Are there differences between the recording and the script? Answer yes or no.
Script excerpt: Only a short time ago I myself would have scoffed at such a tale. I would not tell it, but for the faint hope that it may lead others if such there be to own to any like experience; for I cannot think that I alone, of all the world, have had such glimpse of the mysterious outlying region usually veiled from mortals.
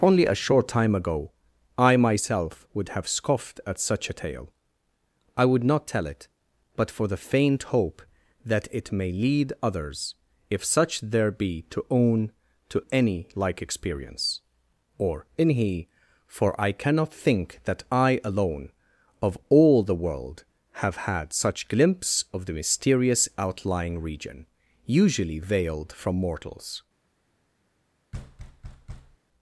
yes